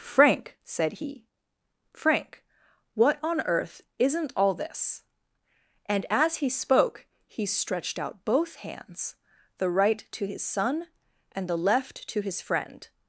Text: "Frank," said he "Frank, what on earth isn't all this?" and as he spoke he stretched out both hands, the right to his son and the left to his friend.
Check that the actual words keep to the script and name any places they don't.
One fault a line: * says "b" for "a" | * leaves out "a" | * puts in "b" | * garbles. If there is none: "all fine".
all fine